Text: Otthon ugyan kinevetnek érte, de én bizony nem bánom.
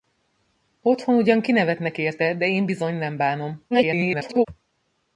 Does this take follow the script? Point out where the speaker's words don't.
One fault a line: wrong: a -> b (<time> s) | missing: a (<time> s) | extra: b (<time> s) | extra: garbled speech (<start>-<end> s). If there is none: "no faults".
extra: garbled speech (3.7-4.5 s)